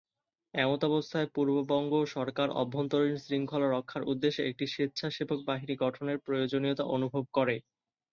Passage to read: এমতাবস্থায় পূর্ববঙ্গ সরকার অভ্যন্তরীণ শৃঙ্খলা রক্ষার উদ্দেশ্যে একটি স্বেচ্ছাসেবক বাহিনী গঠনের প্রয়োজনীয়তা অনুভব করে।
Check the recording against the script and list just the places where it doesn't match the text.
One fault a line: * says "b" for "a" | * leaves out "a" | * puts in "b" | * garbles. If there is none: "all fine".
all fine